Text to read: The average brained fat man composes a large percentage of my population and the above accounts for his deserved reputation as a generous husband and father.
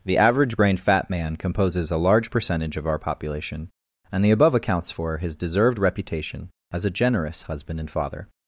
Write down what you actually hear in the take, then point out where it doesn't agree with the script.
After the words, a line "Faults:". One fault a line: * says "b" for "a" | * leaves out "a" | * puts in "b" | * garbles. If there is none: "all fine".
The average brained fat man composes a large percentage of our population and the above accounts for his deserved reputation as a generous husband and father.
Faults:
* says "our" for "my"